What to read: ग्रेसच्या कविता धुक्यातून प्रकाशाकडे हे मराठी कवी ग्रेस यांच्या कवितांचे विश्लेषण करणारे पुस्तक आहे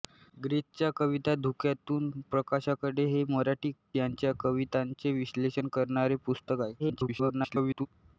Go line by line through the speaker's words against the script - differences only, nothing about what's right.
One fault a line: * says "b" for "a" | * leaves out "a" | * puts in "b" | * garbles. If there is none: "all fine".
* leaves out "कवी ग्रेस"
* garbles